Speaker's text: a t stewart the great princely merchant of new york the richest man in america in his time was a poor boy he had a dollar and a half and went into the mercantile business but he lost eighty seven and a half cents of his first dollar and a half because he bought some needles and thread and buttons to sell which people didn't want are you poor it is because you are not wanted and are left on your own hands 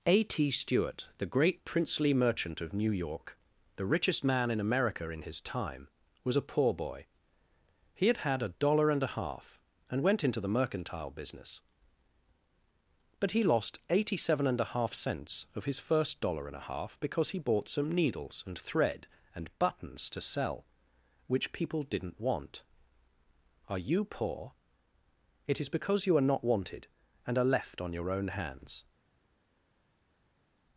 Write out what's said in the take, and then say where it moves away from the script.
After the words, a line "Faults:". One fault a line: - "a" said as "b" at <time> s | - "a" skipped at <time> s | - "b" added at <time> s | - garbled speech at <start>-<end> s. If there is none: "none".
a t stewart the great princely merchant of new york the richest man in america in his time was a poor boy he had had a dollar and a half and went into the mercantile business but he lost eighty seven and a half cents of his first dollar and a half because he bought some needles and thread and buttons to sell which people didn't want are you poor it is because you are not wanted and are left on your own hands
Faults:
- "had" added at 8.2 s